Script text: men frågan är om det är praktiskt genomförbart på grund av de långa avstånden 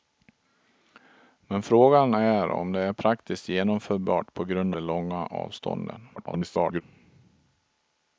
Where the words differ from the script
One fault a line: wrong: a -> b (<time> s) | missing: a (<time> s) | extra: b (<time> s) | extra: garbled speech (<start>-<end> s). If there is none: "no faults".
missing: av (4.8 s)
extra: garbled speech (6.2-6.8 s)